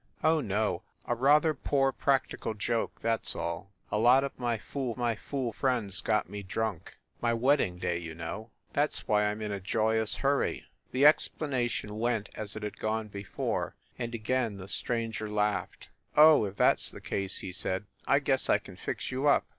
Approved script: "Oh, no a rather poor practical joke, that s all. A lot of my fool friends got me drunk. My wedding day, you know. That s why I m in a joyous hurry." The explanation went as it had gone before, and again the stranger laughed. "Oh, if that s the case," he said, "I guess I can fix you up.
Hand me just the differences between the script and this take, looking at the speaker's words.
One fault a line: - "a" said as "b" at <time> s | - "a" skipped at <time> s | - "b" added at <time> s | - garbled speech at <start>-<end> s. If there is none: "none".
- "my fool" added at 5.0 s